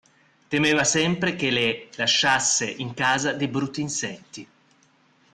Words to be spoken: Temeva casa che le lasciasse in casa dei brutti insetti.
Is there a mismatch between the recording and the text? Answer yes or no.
yes